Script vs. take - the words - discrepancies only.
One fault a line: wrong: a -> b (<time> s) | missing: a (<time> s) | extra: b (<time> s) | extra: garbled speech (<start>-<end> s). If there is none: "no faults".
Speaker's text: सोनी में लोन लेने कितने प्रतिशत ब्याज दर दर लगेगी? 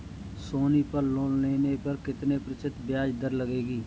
wrong: में -> पर (0.8 s)
extra: पर (1.8 s)
missing: दर (3.3 s)